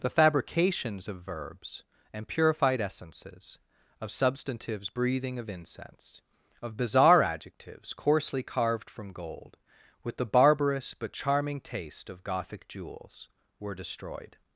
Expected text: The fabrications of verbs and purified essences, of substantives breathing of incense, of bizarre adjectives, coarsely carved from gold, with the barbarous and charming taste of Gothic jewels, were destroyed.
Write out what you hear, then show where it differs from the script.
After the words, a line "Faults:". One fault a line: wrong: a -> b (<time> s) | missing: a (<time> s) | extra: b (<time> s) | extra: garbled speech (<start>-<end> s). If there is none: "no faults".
The fabrications of verbs and purified essences, of substantives breathing of incense, of bizarre adjectives, coarsely carved from gold, with the barbarous but charming taste of Gothic jewels, were destroyed.
Faults:
wrong: and -> but (10.9 s)